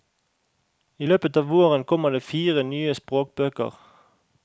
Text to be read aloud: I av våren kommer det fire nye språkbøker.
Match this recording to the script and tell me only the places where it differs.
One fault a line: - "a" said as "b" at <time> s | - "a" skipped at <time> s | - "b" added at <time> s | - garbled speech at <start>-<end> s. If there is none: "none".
- "løpet" added at 1.1 s